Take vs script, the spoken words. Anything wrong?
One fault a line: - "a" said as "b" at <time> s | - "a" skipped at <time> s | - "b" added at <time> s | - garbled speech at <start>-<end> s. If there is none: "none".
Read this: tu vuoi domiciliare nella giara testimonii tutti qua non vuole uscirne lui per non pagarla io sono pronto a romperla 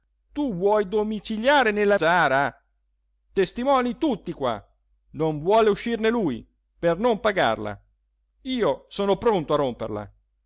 none